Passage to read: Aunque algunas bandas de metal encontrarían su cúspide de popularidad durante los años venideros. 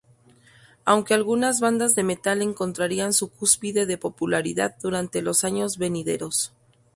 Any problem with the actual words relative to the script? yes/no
no